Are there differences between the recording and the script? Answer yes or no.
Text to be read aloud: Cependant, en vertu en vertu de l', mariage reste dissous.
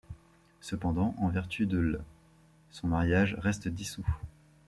yes